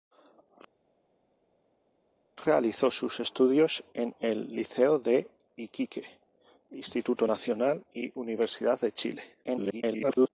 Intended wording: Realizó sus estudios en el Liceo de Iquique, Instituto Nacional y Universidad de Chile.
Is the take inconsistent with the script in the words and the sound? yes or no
yes